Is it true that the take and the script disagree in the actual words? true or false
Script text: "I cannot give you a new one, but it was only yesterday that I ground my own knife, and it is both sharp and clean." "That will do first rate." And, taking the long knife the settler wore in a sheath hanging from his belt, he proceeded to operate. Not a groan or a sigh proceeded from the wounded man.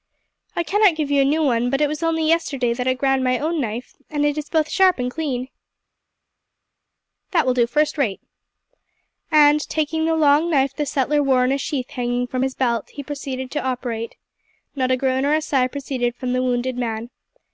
false